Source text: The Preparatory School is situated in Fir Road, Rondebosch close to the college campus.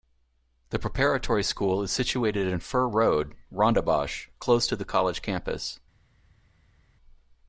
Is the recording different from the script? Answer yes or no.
no